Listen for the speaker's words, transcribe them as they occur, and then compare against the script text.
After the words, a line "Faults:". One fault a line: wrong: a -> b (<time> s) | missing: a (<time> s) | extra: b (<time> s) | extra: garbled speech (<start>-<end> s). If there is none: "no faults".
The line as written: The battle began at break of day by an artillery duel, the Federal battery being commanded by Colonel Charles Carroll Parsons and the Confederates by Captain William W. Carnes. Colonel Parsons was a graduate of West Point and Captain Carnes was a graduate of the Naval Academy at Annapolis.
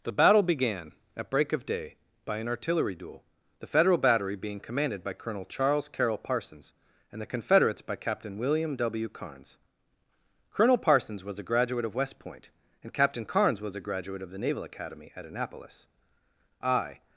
The battle began at break of day by an artillery duel, the Federal battery being commanded by Colonel Charles Carroll Parsons and the Confederates by Captain William W. Carnes. Colonel Parsons was a graduate of West Point and Captain Carnes was a graduate of the Naval Academy at Annapolis. I
Faults:
extra: I (16.6 s)